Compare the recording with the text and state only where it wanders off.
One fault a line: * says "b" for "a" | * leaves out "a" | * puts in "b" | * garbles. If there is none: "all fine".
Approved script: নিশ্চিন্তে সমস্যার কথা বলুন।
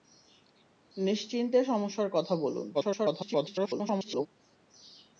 * garbles